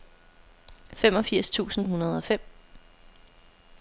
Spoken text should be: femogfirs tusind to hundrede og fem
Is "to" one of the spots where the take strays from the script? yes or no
yes